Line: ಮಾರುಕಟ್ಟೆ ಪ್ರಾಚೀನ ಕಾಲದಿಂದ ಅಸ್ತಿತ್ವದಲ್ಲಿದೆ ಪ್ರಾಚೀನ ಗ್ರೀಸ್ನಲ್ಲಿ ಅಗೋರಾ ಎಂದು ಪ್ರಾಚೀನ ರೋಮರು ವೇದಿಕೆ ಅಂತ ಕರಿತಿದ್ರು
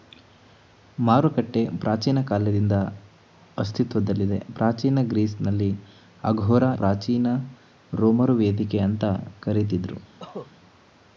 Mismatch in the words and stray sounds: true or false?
true